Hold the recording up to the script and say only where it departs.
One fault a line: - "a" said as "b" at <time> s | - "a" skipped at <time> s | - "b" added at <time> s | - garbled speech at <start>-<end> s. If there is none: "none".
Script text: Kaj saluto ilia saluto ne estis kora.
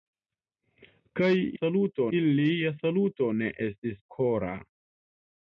none